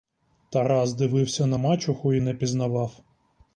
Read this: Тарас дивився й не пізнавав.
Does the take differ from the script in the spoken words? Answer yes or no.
yes